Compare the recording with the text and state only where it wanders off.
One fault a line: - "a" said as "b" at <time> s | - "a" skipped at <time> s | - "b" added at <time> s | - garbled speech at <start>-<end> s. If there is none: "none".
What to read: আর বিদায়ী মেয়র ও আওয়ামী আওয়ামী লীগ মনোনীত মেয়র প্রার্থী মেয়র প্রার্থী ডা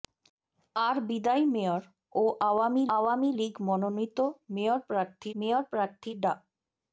none